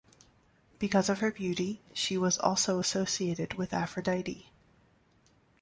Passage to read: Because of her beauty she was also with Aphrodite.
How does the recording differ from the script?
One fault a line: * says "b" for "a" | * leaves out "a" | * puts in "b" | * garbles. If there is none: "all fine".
* puts in "associated"